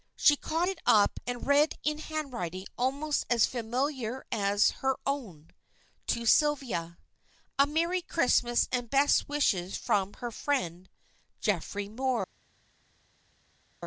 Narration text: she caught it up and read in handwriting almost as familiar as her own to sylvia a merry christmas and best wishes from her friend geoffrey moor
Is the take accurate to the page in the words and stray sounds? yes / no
yes